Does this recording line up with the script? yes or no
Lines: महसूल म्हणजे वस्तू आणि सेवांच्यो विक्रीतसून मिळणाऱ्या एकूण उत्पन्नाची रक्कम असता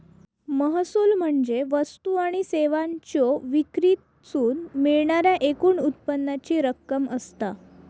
yes